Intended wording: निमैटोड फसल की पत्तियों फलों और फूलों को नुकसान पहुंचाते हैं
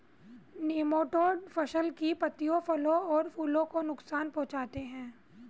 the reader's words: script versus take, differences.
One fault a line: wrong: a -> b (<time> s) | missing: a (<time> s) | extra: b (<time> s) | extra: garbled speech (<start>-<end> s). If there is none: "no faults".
no faults